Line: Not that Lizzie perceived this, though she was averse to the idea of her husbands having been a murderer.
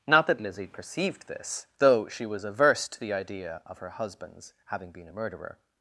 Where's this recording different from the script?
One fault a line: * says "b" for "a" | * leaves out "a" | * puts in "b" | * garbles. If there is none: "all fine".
all fine